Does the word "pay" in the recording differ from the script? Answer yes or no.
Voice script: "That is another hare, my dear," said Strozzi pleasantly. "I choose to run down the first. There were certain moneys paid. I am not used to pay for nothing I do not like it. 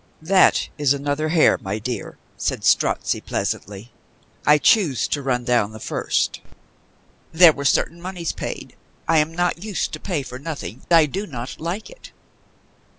no